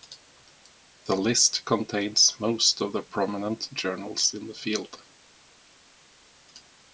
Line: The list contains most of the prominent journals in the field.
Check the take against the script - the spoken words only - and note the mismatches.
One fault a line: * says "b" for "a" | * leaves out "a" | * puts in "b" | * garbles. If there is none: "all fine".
all fine